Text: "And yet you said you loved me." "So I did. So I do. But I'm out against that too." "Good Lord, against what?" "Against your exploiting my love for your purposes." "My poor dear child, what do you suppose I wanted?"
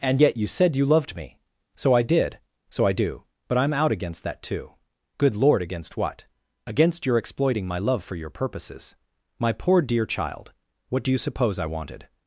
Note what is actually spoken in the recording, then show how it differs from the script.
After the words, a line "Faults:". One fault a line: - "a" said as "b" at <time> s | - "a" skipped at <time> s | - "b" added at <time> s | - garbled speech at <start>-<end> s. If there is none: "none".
"And yet you said you loved me." "So I did. So I do. But I'm out against that too." "Good Lord, against what?" "Against your exploiting my love for your purposes." "My poor dear child, what do you suppose I wanted?"
Faults:
none